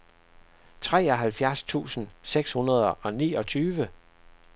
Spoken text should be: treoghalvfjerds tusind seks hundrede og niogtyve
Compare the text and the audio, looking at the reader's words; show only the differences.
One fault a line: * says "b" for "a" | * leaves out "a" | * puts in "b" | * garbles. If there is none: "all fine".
all fine